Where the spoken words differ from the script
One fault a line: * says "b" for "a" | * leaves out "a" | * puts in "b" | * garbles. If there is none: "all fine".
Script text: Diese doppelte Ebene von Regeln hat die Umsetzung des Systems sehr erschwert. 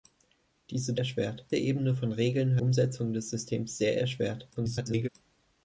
* says "erschwert" for "doppelte"
* leaves out "hat die"
* garbles